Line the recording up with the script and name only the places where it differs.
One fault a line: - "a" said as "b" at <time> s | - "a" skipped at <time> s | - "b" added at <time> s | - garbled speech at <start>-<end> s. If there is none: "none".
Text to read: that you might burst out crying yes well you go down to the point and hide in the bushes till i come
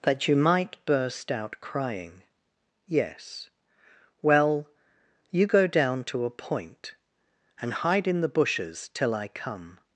- "the" said as "a" at 6.2 s